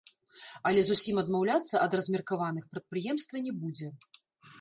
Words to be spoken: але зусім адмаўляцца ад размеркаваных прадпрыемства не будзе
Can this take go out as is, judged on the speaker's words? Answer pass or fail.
pass